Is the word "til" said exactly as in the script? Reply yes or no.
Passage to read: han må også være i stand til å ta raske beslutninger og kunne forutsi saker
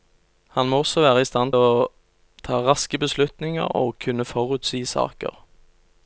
no